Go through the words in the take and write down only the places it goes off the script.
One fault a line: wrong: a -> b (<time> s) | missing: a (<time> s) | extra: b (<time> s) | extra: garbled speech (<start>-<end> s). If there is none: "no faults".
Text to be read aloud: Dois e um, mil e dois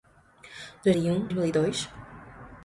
no faults